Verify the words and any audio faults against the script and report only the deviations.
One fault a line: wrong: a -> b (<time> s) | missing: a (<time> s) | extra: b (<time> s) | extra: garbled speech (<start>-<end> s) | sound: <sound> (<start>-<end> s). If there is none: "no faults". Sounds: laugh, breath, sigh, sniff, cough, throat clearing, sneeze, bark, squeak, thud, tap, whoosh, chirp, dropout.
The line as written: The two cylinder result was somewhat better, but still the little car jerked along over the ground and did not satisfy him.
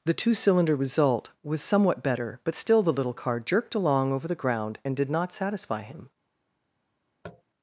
sound: tap (7.2-7.4 s)